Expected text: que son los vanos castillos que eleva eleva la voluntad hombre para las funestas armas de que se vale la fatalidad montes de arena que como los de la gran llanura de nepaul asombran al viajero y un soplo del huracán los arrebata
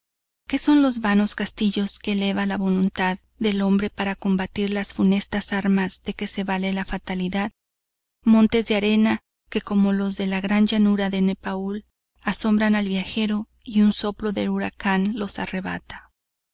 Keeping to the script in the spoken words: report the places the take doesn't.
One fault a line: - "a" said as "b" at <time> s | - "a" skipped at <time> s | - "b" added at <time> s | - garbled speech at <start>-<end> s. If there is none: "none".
- "eleva" skipped at 2.5 s
- "del" added at 3.4 s
- "combatir" added at 4.2 s